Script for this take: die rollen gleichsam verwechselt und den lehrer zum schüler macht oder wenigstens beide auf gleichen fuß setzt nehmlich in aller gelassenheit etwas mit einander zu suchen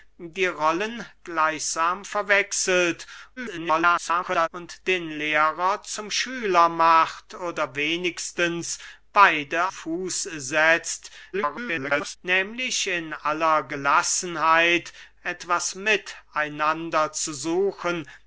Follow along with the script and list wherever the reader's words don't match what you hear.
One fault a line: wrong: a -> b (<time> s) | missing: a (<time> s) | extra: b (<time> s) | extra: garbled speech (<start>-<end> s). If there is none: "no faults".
extra: garbled speech (3.4-4.5 s)
missing: auf gleichen (9.7 s)
extra: garbled speech (11.3-12.2 s)